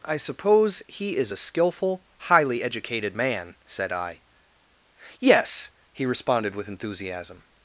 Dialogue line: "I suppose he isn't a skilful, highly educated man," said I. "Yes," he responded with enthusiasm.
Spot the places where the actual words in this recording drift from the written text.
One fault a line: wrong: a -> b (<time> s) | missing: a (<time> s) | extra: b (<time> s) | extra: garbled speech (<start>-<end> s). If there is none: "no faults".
wrong: isn't -> is (1.1 s)